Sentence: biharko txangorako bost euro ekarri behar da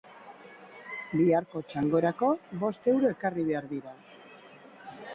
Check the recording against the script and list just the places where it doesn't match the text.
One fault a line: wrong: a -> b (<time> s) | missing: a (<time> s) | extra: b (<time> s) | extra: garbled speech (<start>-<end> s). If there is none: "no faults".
wrong: da -> dira (3.8 s)